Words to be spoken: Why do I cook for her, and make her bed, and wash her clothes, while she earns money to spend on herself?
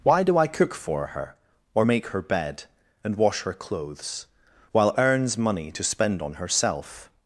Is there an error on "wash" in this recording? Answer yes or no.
no